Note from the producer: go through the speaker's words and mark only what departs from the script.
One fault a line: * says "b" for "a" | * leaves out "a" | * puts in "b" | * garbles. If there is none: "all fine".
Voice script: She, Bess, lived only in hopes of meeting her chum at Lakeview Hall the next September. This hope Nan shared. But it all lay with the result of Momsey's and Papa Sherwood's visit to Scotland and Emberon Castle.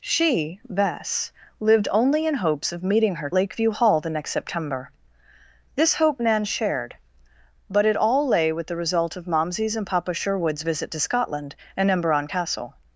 * leaves out "chum at"